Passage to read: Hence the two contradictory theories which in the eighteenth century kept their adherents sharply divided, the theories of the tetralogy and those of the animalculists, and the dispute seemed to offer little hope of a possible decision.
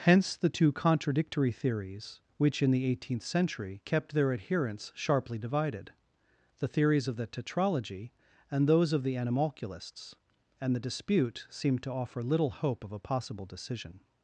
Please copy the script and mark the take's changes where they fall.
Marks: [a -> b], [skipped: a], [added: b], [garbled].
Hence the two contradictory theories which in the eighteenth century kept their adherents sharply divided, the theories of the tetralogy and those of the animalculists, and the dispute seemed to offer little hope of a possible decision.